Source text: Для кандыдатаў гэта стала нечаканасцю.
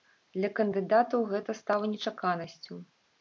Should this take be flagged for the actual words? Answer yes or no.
no